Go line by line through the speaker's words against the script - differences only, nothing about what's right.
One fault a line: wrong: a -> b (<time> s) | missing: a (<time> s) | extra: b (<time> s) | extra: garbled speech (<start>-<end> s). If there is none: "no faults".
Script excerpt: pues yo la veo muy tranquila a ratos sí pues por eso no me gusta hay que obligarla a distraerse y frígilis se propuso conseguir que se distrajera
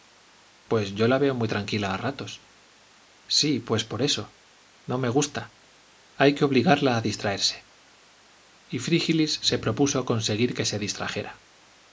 no faults